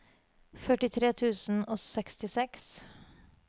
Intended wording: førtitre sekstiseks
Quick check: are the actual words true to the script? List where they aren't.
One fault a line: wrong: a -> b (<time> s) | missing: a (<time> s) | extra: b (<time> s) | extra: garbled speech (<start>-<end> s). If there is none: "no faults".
extra: tusen og (1.2 s)